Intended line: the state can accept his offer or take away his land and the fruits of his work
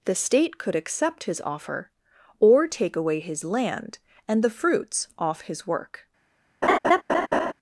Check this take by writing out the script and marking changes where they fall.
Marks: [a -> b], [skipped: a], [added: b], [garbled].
the state [can -> could] accept his offer or take away his land and the fruits [of -> off] his work